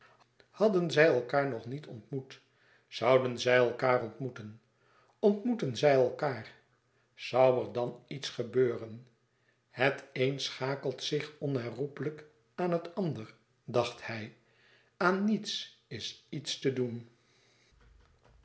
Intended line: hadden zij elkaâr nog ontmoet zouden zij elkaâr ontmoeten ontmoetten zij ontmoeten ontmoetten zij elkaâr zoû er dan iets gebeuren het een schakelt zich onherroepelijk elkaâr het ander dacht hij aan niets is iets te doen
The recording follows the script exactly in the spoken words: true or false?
false